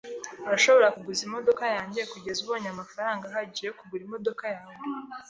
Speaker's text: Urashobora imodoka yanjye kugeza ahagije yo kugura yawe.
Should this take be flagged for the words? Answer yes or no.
yes